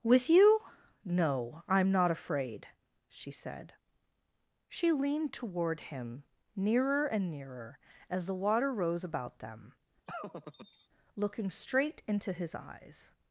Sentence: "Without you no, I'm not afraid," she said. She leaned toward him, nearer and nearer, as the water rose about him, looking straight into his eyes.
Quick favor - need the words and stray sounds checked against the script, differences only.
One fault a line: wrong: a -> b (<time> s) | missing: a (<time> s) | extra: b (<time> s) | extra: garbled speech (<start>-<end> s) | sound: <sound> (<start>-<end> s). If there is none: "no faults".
wrong: Without -> With (0.0 s)
wrong: him -> them (9.4 s)
sound: laugh (10.1-10.9 s)